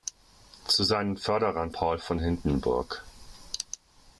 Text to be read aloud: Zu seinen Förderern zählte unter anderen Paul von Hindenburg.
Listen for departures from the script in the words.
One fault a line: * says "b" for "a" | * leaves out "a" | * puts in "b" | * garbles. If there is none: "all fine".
* leaves out "zählte unter anderen"